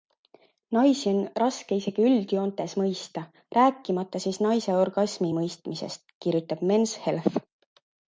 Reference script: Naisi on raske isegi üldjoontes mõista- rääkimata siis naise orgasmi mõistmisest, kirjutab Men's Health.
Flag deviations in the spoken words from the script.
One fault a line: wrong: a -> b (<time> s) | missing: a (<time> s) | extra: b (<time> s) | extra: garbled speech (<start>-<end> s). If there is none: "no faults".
no faults